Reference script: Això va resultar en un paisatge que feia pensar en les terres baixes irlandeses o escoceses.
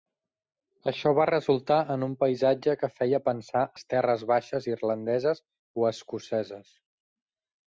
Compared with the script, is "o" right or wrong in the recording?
right